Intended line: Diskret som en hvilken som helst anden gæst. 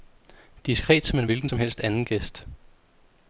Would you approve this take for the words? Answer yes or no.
yes